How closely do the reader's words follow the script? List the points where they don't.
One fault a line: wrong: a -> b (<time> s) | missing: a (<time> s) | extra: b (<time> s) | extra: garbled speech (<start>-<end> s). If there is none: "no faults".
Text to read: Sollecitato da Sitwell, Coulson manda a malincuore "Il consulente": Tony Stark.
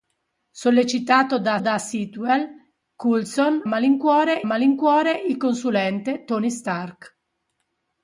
extra: da (1.6 s)
wrong: manda -> malincuore (3.7 s)